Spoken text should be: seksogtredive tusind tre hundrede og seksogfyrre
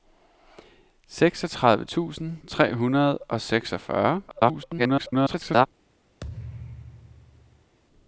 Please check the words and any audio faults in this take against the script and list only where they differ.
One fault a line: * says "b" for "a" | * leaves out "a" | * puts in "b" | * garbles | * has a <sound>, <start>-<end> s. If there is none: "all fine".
* garbles
* has a thud, 6.2-7.8 s